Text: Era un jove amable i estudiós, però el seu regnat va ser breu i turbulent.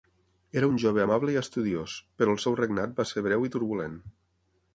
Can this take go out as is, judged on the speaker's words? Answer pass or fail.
pass